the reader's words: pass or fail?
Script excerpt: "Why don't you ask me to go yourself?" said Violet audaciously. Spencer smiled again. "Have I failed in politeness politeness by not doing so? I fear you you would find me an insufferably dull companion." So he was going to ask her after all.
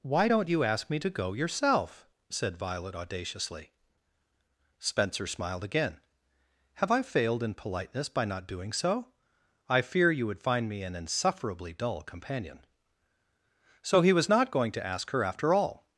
fail